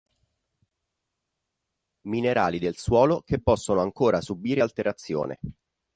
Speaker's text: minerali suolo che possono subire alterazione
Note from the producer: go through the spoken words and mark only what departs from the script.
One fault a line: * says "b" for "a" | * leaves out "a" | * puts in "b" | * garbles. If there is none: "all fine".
* puts in "del"
* puts in "ancora"